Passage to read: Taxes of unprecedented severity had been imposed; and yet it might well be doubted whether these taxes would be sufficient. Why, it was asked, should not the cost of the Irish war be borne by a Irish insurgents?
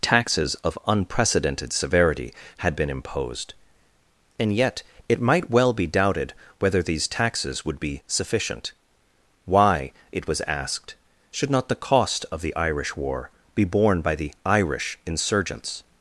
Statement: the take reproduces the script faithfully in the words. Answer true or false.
false